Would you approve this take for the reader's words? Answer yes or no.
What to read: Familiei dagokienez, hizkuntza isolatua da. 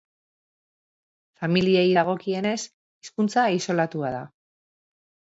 yes